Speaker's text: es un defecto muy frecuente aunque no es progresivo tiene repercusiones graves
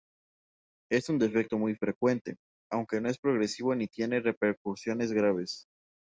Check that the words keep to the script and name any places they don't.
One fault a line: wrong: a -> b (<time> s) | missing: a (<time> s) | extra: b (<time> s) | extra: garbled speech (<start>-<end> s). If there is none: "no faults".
extra: ni (3.8 s)